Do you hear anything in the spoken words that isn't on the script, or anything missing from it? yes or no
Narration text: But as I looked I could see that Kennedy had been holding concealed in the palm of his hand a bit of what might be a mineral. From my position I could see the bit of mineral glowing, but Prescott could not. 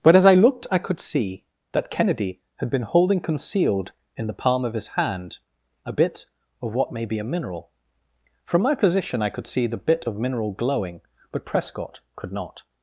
yes